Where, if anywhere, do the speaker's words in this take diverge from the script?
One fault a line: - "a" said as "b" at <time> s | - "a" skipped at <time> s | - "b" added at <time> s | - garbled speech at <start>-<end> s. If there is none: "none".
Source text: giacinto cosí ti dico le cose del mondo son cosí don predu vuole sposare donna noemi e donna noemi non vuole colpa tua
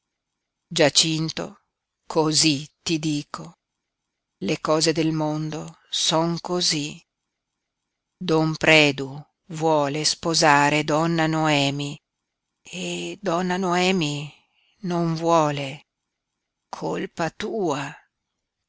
none